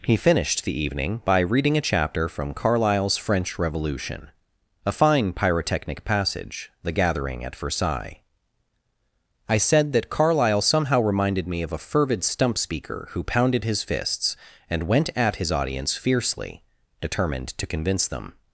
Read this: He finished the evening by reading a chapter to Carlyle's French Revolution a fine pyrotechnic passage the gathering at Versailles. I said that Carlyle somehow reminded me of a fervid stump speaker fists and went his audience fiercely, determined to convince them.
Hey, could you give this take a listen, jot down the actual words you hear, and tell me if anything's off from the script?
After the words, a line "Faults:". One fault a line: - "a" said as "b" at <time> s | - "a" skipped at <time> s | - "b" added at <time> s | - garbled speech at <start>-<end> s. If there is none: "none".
He finished the evening by reading a chapter from Carlyle's French Revolution a fine pyrotechnic passage the gathering at Versailles. I said that Carlyle somehow reminded me of a fervid stump speaker who pounded his fists and went at his audience fiercely, determined to convince them.
Faults:
- "to" said as "from" at 2.3 s
- "who pounded his" added at 13.1 s
- "at" added at 15.1 s